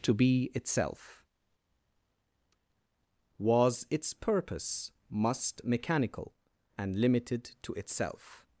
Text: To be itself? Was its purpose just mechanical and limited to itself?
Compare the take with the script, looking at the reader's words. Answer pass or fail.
fail